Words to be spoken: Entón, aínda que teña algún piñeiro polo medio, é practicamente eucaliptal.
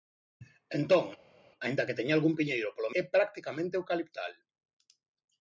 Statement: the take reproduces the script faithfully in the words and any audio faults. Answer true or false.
false